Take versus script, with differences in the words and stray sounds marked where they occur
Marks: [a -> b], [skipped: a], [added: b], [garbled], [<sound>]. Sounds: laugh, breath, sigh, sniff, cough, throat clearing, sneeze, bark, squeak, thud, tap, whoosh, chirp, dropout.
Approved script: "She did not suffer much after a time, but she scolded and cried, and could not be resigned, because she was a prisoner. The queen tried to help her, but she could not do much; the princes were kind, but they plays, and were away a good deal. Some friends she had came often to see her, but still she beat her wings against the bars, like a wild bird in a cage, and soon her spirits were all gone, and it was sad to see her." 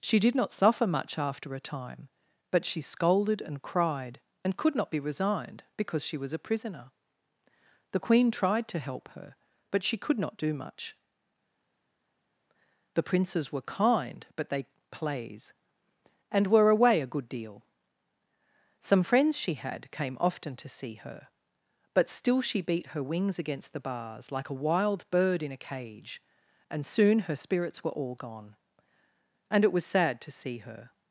"She did not suffer much after a time, but she scolded and cried, and could not be resigned, because she was a prisoner. The queen tried to help her, but she could not do much; the princes were kind, but they plays, and were away a good deal. Some friends she had came often to see her, but still she beat her wings against the bars, like a wild bird in a cage, and soon her spirits were all gone, and it was sad to see her."